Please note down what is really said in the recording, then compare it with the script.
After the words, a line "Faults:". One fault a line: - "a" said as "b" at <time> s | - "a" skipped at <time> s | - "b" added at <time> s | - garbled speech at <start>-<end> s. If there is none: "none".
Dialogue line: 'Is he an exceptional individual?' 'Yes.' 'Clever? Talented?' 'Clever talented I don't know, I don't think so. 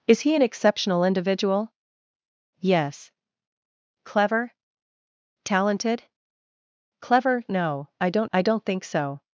'Is he an exceptional individual?' 'Yes.' 'Clever? Talented?' 'Clever know I don't I don't think so.
Faults:
- "talented" said as "know" at 7.5 s
- "know" skipped at 8.3 s